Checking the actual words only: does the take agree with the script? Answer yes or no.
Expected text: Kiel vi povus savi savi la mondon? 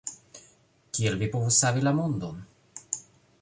no